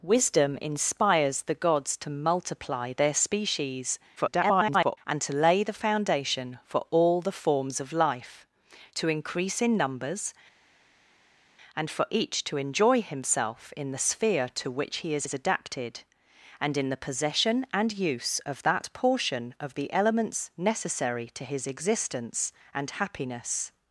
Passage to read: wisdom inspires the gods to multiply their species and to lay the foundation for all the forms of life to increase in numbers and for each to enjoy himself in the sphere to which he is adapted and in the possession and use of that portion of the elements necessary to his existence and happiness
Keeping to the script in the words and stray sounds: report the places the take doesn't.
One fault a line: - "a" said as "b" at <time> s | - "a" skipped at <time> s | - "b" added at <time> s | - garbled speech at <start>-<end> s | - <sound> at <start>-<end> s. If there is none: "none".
- garbled speech at 4.2-5.0 s
- "is" added at 15.2 s